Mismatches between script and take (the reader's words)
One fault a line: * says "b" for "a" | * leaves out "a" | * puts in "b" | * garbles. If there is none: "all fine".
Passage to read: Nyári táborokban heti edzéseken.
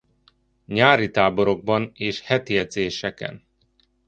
* puts in "és"